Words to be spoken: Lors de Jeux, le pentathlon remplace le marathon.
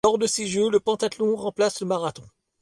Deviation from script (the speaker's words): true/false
true